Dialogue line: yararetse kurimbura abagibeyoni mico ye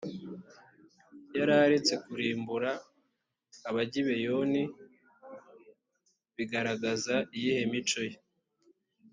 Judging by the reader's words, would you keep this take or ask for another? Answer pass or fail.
fail